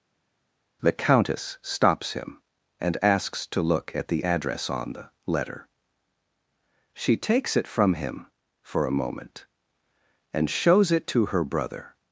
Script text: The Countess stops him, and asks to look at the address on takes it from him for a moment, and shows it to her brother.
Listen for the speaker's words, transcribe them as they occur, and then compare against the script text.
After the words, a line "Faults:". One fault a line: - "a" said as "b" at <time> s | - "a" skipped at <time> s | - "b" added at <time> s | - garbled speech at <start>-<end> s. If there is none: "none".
The Countess stops him, and asks to look at the address on the letter. She takes it from him for a moment, and shows it to her brother.
Faults:
- "the letter She" added at 4.9 s